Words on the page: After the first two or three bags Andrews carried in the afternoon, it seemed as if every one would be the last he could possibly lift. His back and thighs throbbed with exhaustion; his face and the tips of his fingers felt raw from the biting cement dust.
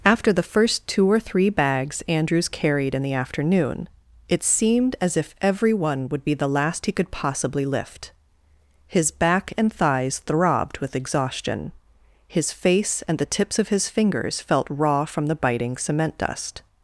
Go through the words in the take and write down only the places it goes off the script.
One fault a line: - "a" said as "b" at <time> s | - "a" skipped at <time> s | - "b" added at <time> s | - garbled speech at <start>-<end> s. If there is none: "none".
none